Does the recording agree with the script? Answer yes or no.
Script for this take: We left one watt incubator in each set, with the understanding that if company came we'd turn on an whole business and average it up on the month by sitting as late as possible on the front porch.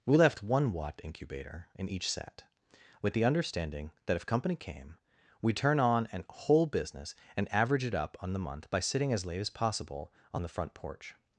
yes